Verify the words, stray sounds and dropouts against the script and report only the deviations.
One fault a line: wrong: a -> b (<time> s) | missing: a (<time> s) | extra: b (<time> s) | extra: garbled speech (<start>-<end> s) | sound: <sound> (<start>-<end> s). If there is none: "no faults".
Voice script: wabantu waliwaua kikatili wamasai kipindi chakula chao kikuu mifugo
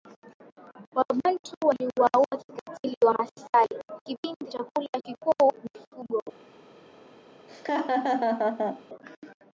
missing: chao (4.9 s)
sound: laugh (7.5-8.8 s)